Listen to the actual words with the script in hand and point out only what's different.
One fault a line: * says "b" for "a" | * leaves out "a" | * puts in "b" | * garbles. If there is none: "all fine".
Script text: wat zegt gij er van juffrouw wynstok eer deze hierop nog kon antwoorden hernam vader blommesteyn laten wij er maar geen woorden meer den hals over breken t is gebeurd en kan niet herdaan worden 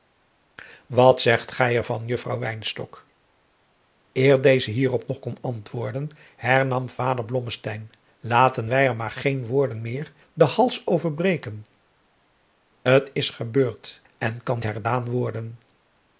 * leaves out "niet"